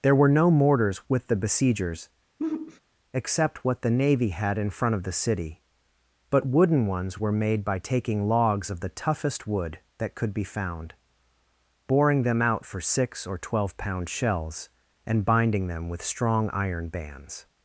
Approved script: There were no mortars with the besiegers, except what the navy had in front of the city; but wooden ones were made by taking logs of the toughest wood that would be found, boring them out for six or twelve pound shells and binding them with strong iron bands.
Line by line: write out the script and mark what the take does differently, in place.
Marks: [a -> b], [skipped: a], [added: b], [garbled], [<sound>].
There were no mortars with the besiegers, [sigh] except what the navy had in front of the city; but wooden ones were made by taking logs of the toughest wood that [would -> could] be found, boring them out for six or twelve pound shells and binding them with strong iron bands.